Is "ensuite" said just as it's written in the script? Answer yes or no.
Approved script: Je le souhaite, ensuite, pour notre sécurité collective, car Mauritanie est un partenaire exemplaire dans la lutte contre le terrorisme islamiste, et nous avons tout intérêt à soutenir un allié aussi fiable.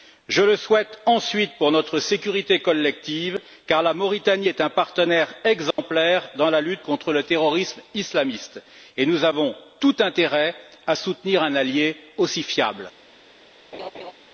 yes